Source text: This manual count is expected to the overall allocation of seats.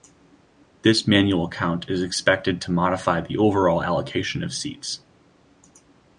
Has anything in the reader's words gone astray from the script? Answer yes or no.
yes